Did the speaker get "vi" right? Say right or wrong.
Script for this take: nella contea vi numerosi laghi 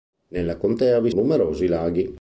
right